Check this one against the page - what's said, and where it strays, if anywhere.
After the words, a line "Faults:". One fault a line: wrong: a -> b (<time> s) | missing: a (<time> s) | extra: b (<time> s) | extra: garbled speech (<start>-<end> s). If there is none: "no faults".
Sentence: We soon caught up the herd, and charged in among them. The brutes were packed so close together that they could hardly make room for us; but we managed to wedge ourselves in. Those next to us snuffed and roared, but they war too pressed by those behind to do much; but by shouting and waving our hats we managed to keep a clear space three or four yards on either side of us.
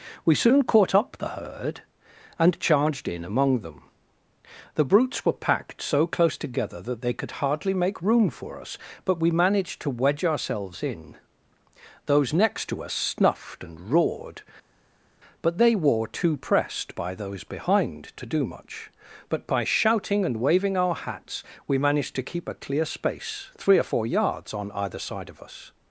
We soon caught up the herd, and charged in among them. The brutes were packed so close together that they could hardly make room for us; but we managed to wedge ourselves in. Those next to us snuffed and roared, but they were too pressed by those behind to do much; but by shouting and waving our hats we managed to keep a clear space three or four yards on either side of us.
Faults:
wrong: war -> were (15.7 s)